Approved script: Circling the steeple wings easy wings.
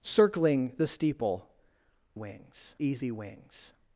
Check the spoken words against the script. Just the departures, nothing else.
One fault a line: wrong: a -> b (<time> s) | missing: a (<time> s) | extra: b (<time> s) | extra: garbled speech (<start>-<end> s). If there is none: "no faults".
no faults